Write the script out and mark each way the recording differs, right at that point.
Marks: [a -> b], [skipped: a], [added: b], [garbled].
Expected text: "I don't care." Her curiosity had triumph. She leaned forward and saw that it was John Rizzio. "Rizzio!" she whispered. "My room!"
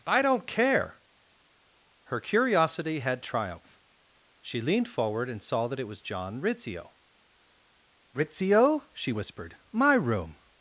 "I don't care." Her curiosity had triumph. She leaned forward and saw that it was John Rizzio. "Rizzio!" she whispered. "My room!"